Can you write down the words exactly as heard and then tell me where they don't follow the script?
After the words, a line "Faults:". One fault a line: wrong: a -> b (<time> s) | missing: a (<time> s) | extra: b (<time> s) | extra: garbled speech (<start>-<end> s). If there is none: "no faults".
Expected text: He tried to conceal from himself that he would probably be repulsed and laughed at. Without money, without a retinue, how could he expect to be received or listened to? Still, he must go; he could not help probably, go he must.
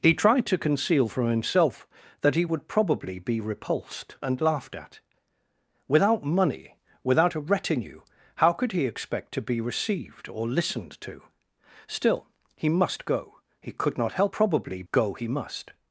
He tried to conceal from himself that he would probably be repulsed and laughed at. Without money, without a retinue, how could he expect to be received or listened to? Still, he must go; he could not help probably, go he must.
Faults:
no faults